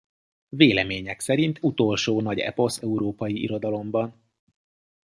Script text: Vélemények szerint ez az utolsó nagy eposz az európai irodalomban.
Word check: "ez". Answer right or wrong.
wrong